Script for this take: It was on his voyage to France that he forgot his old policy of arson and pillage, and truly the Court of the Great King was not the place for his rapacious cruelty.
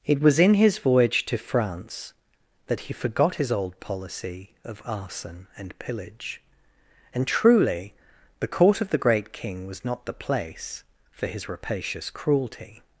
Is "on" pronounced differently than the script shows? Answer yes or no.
yes